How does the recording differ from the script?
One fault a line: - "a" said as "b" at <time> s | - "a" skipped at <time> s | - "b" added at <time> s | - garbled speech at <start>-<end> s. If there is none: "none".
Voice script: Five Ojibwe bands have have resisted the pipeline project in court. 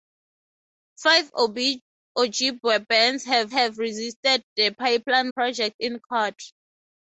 none